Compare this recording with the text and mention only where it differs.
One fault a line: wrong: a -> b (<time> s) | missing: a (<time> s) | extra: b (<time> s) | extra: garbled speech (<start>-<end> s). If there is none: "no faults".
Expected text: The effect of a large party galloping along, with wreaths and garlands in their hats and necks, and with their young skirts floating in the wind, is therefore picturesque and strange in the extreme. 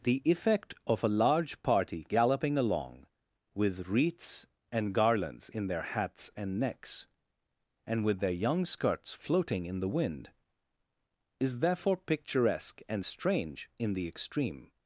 no faults